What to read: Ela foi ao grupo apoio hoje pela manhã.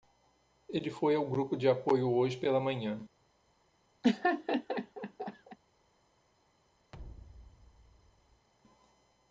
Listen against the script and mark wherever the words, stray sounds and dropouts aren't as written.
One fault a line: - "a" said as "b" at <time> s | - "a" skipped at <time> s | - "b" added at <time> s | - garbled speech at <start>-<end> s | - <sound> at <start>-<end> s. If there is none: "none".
- "Ela" said as "Ele" at 0.7 s
- "de" added at 1.6 s
- laugh at 4.0-5.6 s
- thud at 6.9-8.5 s